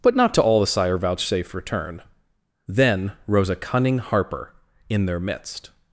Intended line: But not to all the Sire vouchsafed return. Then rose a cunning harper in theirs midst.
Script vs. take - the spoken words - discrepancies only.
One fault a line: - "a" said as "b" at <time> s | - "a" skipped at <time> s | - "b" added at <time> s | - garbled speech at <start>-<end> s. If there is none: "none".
- "theirs" said as "their" at 5.0 s